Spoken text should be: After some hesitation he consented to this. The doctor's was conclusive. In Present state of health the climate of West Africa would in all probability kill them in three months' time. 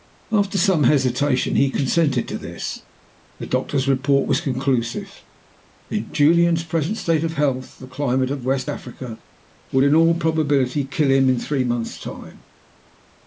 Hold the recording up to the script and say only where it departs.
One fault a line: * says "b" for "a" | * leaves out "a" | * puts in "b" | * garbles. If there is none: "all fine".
* puts in "report"
* puts in "Julian's"
* says "him" for "them"